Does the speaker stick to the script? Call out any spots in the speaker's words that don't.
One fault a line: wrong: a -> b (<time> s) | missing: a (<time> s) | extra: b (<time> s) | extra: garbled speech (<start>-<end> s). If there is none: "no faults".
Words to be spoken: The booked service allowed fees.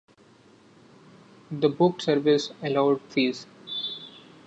no faults